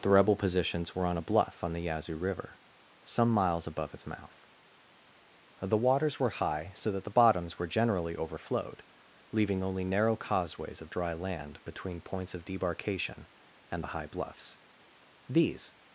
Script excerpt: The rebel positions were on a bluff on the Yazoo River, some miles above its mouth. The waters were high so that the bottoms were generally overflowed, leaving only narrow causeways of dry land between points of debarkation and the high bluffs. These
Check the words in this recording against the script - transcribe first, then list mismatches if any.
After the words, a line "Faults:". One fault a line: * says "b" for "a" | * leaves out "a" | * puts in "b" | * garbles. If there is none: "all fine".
The rebel positions were on a bluff on the Yazoo River, some miles above its mouth. The waters were high so that the bottoms were generally overflowed, leaving only narrow causeways of dry land between points of debarkation and the high bluffs. These
Faults:
all fine